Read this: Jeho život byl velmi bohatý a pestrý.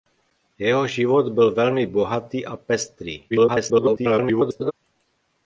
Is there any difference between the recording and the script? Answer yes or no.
yes